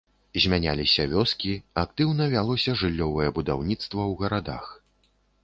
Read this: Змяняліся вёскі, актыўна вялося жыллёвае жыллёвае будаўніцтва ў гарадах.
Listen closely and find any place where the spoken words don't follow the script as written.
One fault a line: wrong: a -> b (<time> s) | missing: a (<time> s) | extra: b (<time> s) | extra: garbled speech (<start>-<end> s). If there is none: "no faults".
missing: жыллёвае (3.3 s)